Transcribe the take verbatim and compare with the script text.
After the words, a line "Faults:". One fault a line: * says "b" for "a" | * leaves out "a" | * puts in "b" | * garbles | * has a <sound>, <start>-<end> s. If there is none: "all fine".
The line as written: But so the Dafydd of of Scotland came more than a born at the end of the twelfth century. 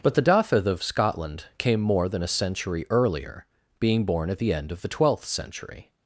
But the Dafydd of Scotland came more than a century earlier, being born at the end of the twelfth century.
Faults:
* leaves out "so"
* leaves out "of"
* puts in "century earlier being"